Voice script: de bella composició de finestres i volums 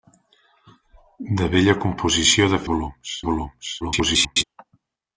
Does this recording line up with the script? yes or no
no